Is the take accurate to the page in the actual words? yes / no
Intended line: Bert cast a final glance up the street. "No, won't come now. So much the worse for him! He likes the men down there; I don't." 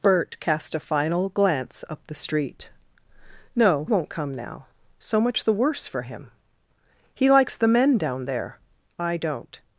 yes